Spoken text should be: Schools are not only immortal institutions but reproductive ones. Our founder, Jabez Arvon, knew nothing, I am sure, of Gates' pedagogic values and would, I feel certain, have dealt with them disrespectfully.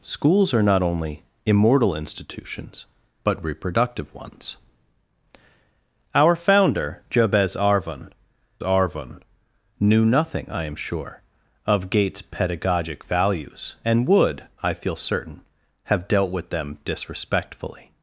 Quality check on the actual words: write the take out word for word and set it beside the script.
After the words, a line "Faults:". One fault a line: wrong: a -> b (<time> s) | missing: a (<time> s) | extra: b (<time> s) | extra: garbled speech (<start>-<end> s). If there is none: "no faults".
Schools are not only immortal institutions but reproductive ones. Our founder, Jabez Arvon Arvon, knew nothing, I am sure, of Gates' pedagogic values and would, I feel certain, have dealt with them disrespectfully.
Faults:
extra: Arvon (8.6 s)